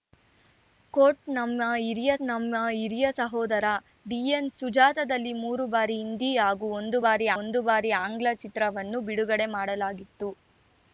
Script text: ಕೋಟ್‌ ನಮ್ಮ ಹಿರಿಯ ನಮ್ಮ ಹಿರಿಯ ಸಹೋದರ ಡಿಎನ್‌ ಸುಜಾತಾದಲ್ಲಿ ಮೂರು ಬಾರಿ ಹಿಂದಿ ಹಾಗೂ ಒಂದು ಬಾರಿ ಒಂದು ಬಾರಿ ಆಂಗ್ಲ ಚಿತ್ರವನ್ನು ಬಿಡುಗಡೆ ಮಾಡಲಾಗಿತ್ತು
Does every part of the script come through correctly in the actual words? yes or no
yes